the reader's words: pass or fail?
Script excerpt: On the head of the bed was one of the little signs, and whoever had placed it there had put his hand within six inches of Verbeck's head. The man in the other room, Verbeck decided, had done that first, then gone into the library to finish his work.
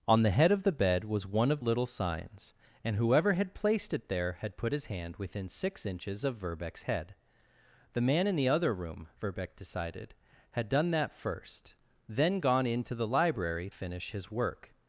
fail